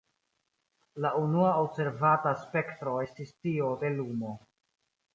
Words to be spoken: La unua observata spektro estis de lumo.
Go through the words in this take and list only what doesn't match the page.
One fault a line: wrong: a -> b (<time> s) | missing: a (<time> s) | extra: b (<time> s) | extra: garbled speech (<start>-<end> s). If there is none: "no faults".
extra: tio (3.4 s)